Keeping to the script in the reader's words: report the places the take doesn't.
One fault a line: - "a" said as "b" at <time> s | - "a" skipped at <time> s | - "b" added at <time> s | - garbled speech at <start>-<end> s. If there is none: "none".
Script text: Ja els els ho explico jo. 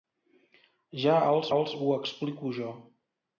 none